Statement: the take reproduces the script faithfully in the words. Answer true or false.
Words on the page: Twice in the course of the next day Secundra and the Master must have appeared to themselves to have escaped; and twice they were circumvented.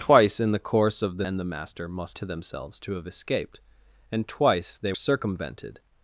false